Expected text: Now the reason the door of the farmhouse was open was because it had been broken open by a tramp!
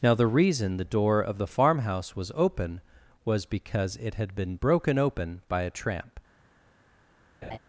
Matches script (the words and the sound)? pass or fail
fail